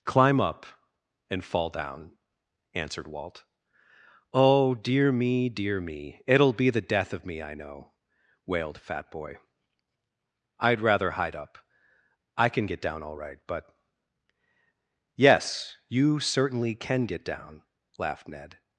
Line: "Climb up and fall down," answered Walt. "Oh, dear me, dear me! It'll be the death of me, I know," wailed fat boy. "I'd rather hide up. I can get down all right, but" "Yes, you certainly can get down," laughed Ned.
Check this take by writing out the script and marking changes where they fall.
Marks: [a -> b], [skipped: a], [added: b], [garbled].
"Climb up and fall down," answered Walt. "Oh, dear me, dear me! It'll be the death of me, I know," wailed fat boy. "I'd rather hide up. I can get down all right, but" "Yes, you certainly can get down," laughed Ned.